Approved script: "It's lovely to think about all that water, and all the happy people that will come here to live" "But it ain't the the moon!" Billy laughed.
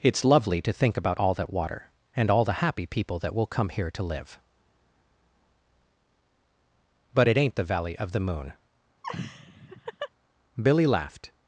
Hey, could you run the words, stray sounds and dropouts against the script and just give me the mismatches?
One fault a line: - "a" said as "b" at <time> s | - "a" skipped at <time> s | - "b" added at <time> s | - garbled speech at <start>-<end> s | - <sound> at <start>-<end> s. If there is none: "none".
- "valley of" added at 7.7 s
- laugh at 9.0-10.1 s